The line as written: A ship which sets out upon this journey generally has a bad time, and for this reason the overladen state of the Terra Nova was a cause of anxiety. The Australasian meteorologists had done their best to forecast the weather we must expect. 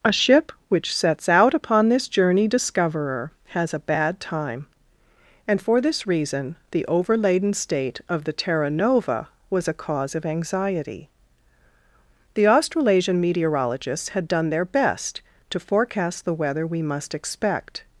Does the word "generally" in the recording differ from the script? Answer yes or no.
yes